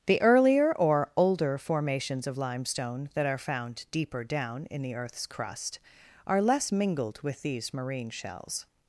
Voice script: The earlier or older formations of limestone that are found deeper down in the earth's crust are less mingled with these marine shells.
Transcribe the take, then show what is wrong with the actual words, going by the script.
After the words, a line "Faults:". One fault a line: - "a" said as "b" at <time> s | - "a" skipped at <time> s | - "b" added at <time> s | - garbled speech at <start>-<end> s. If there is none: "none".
The earlier or older formations of limestone that are found deeper down in the earth's crust are less mingled with these marine shells.
Faults:
none